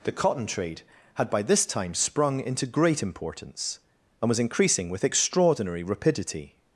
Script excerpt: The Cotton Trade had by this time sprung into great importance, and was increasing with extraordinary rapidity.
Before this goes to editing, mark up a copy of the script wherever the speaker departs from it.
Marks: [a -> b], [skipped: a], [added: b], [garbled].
The Cotton Trade had by this time sprung into great importance, and was increasing with extraordinary rapidity.